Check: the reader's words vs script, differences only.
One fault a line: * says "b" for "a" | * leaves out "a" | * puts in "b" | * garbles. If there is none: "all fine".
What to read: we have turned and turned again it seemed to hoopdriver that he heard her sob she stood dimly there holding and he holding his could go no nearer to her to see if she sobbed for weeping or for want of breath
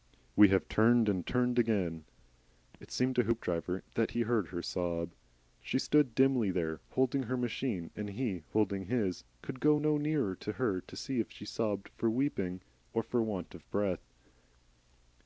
* puts in "her machine"